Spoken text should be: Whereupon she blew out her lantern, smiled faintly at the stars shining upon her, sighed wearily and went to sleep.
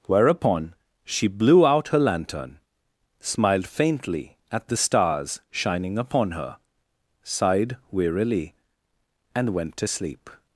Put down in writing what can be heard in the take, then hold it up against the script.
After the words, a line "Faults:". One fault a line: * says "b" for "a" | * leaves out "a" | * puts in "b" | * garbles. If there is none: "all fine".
Whereupon she blew out her lantern, smiled faintly at the stars shining upon her, sighed wearily and went to sleep.
Faults:
all fine